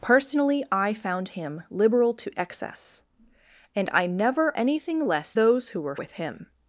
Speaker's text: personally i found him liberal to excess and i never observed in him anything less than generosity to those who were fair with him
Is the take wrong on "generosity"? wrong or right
wrong